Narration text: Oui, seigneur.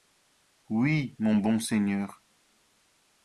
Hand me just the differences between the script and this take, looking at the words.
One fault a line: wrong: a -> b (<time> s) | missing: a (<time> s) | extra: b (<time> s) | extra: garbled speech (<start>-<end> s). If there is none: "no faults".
extra: mon bon (1.2 s)